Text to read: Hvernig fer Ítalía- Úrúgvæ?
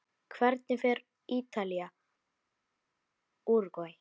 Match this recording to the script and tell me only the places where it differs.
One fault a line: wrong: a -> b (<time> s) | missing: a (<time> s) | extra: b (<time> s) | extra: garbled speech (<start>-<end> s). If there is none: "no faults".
no faults